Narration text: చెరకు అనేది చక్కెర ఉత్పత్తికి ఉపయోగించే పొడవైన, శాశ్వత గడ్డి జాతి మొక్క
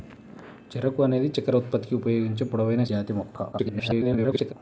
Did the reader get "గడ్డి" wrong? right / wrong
wrong